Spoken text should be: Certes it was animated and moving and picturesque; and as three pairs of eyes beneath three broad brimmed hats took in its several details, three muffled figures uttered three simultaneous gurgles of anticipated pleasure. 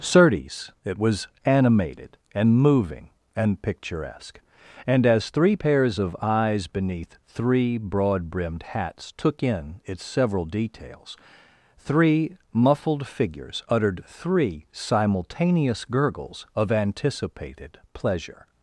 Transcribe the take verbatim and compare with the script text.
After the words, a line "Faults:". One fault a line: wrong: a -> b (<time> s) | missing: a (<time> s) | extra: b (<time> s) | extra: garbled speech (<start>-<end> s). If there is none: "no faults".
Certes it was animated and moving and picturesque; and as three pairs of eyes beneath three broad brimmed hats took in its several details, three muffled figures uttered three simultaneous gurgles of anticipated pleasure.
Faults:
no faults